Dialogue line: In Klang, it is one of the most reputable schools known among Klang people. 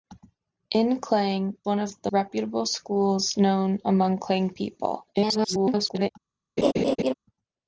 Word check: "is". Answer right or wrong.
wrong